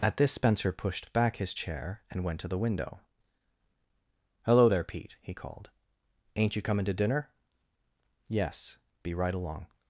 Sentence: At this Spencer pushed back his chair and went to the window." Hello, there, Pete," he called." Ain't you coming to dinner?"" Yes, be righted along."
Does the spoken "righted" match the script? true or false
false